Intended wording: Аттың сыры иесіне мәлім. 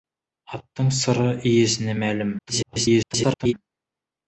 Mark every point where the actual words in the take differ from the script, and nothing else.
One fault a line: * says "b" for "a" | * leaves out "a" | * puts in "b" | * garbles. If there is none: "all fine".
* garbles